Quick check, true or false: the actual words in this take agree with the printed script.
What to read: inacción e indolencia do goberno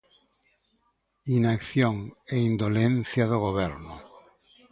true